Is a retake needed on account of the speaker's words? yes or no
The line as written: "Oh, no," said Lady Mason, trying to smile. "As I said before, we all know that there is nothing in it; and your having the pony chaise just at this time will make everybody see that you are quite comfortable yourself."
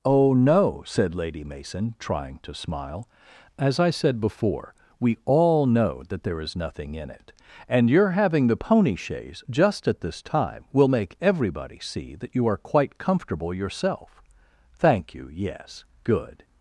yes